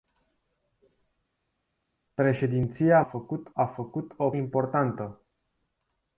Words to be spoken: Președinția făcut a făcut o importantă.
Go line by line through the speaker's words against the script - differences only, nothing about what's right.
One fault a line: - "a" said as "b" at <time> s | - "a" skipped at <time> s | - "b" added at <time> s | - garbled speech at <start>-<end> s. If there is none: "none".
none